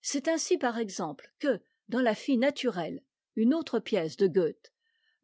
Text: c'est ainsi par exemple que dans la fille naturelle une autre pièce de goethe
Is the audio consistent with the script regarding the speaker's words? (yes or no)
yes